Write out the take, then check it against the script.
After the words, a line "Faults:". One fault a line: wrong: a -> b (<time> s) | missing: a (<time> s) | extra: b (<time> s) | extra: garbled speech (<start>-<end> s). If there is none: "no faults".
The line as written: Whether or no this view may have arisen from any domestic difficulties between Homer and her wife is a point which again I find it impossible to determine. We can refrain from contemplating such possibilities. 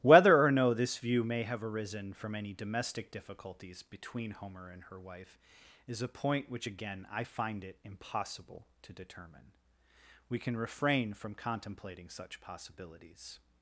Whether or no this view may have arisen from any domestic difficulties between Homer and her wife is a point which again I find it impossible to determine. We can refrain from contemplating such possibilities.
Faults:
no faults